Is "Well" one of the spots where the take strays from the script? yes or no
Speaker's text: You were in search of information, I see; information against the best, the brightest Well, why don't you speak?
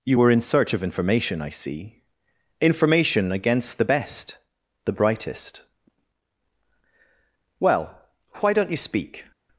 no